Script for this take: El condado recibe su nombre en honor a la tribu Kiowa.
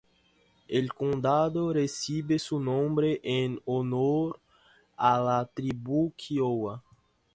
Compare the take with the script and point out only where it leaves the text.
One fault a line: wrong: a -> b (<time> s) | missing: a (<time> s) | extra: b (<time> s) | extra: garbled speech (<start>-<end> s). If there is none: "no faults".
no faults